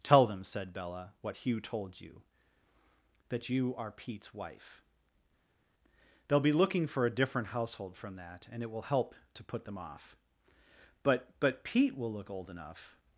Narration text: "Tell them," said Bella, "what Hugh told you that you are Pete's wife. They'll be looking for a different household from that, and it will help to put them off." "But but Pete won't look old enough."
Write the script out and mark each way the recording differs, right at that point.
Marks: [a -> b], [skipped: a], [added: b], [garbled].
"Tell them," said Bella, "what Hugh told you that you are Pete's wife. They'll be looking for a different household from that, and it will help to put them off." "But but Pete [won't -> will] look old enough."